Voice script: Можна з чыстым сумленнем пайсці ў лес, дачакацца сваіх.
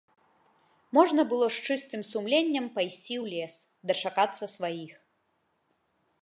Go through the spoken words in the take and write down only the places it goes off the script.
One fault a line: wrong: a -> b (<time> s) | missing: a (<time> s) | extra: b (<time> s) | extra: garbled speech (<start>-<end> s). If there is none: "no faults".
extra: было (1.3 s)